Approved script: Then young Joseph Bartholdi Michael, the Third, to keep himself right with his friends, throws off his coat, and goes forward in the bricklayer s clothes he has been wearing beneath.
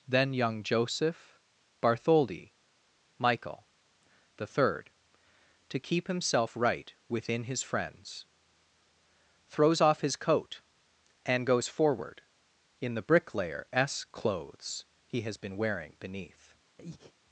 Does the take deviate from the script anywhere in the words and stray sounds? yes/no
yes